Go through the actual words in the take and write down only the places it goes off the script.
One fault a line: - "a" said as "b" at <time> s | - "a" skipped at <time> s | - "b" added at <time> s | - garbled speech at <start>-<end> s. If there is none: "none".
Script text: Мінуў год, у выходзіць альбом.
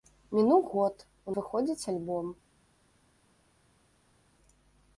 none